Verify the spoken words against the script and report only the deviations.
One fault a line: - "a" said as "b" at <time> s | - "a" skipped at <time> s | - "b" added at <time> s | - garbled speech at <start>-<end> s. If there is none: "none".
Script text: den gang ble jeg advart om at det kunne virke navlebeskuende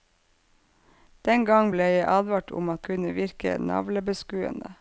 - "det" skipped at 2.9 s